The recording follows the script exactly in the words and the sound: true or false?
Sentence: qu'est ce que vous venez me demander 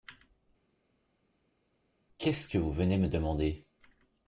true